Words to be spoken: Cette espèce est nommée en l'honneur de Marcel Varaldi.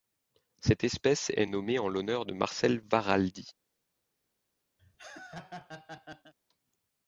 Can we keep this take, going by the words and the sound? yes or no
no